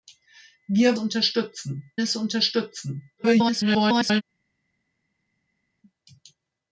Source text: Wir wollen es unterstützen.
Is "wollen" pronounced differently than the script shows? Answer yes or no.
yes